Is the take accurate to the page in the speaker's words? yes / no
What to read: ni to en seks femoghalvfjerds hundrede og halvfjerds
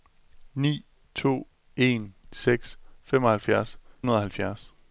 yes